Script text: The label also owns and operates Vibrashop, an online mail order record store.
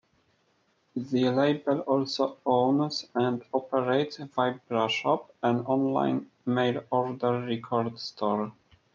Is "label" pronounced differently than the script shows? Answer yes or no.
no